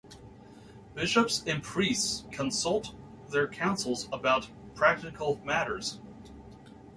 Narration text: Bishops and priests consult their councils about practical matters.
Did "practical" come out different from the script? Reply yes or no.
no